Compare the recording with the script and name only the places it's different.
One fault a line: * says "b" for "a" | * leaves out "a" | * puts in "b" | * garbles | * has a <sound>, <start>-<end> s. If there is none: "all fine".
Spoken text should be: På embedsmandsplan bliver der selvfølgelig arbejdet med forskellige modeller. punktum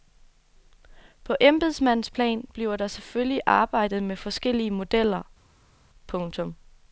all fine